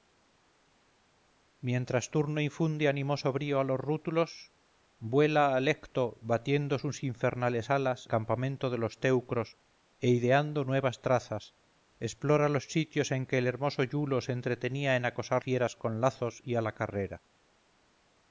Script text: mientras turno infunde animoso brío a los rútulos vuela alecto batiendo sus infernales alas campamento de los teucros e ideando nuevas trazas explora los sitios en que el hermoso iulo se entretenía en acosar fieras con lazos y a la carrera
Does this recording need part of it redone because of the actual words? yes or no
no